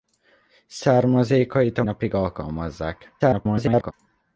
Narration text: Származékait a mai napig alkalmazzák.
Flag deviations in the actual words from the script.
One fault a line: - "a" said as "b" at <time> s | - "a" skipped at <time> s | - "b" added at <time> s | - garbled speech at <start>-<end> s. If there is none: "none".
- "mai" skipped at 1.8 s
- garbled speech at 3.2-3.9 s